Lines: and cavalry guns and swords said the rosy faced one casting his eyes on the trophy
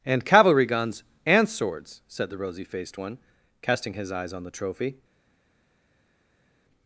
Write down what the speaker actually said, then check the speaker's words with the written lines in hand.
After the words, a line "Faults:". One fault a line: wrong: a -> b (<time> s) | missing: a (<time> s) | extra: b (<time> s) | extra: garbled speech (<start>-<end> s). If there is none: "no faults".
and cavalry guns and swords said the rosy faced one casting his eyes on the trophy
Faults:
no faults